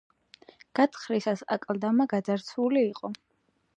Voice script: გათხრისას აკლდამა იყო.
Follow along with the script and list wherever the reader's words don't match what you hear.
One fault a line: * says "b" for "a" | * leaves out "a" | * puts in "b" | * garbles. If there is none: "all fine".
* puts in "გაძარცვული"